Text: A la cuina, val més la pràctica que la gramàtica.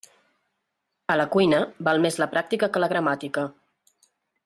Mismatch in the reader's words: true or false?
false